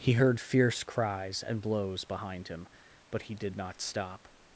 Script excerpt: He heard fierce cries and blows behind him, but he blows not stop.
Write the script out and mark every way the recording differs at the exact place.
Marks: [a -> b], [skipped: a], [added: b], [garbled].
He heard fierce cries and blows behind him, but he [blows -> did] not stop.